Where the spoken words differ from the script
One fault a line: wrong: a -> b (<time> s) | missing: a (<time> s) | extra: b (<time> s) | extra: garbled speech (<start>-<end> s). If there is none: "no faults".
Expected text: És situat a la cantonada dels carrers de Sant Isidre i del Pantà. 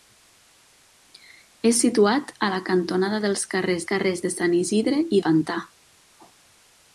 extra: carrers (3.9 s)
missing: del (5.2 s)